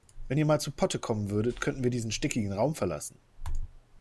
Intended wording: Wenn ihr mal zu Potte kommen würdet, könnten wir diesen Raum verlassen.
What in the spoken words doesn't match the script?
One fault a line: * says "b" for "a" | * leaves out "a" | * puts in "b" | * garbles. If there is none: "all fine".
* puts in "stickigen"